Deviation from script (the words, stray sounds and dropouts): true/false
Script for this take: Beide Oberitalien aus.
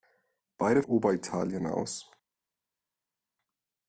false